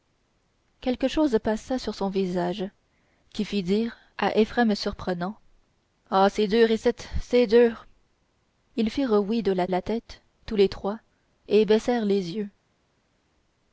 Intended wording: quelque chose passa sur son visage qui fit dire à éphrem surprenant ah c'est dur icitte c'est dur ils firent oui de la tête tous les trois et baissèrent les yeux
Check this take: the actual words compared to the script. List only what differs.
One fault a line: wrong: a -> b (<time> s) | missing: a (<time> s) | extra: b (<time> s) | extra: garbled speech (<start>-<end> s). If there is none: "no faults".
extra: la (9.7 s)